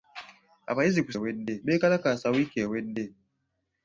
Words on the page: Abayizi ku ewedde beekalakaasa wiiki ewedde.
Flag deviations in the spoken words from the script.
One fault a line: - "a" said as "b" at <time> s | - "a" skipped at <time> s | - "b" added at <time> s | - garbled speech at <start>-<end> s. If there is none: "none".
none